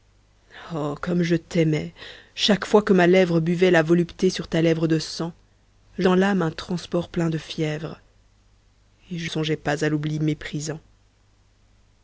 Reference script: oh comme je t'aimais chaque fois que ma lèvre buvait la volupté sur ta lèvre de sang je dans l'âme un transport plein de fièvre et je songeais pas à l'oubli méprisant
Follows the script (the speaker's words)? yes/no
yes